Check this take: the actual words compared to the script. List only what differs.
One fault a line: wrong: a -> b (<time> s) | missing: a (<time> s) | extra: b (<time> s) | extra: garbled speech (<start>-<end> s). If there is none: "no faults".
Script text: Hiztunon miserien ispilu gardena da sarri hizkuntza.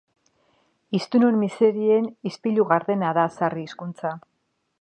no faults